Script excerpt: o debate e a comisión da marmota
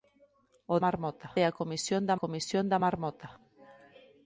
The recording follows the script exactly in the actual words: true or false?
false